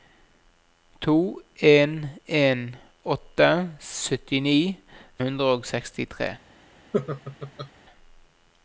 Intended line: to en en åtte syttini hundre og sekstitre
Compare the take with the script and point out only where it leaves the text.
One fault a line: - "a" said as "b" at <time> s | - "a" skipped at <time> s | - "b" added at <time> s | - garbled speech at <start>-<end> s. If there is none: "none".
none